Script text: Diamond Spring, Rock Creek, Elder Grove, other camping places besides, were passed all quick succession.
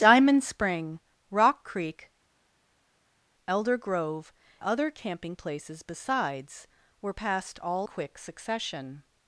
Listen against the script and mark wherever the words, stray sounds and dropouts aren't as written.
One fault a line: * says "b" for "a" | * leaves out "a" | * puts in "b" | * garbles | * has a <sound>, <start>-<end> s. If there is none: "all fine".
all fine